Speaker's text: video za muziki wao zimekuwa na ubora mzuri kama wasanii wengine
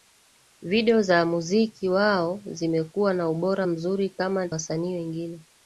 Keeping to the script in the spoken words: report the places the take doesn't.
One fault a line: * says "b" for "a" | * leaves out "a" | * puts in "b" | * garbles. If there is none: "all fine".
all fine